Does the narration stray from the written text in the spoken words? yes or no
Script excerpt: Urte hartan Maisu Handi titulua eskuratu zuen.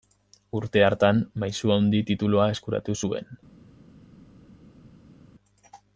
no